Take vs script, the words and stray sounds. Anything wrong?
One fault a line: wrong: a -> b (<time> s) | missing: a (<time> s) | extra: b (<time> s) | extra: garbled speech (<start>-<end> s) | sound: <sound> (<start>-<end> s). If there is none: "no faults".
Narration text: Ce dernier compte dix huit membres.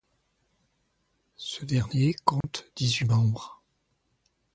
sound: dropout (2.4-2.4 s)